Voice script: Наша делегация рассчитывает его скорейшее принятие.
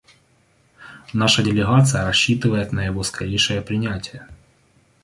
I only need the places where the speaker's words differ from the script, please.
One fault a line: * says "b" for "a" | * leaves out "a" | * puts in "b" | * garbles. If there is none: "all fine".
* puts in "на"